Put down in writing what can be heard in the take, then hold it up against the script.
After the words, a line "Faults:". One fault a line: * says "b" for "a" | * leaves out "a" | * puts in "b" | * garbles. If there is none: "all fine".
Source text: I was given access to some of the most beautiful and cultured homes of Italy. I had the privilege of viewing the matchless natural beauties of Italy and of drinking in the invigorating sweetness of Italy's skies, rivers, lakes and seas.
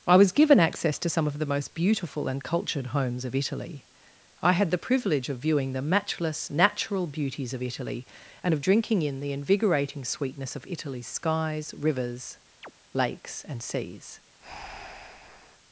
I was given access to some of the most beautiful and cultured homes of Italy. I had the privilege of viewing the matchless natural beauties of Italy and of drinking in the invigorating sweetness of Italy's skies, rivers, lakes and seas.
Faults:
all fine